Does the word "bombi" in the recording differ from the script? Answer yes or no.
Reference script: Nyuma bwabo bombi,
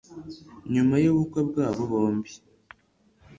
no